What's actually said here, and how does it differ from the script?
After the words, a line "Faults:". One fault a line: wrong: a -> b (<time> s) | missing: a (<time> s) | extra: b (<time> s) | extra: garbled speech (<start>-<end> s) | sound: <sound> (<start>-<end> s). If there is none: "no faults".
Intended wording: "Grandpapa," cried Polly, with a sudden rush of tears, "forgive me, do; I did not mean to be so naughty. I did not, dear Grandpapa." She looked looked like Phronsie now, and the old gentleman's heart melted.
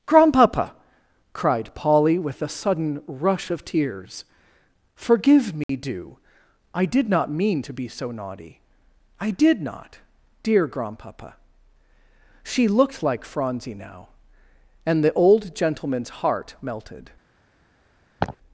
"Grandpapa," cried Polly, with a sudden rush of tears, "forgive me, do; I did not mean to be so naughty. I did not, dear Grandpapa." She looked like Phronsie now, and the old gentleman's heart melted.
Faults:
sound: dropout (5.6-5.7 s)
missing: looked (13.0 s)
sound: laugh (18.2-18.4 s)